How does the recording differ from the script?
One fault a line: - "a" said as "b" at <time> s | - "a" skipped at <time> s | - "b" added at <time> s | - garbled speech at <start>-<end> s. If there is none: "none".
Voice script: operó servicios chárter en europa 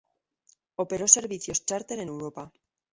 none